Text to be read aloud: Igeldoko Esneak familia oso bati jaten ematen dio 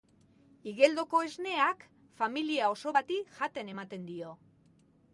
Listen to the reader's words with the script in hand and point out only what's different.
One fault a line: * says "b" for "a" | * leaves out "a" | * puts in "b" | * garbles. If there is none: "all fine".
all fine